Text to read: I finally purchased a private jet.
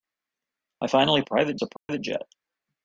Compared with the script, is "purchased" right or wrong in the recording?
wrong